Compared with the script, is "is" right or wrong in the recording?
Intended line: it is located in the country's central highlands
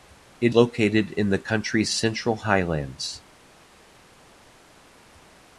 wrong